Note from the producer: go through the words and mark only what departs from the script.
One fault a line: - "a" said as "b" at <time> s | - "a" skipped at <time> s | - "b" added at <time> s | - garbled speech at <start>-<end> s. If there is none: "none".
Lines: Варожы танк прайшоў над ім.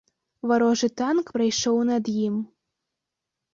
none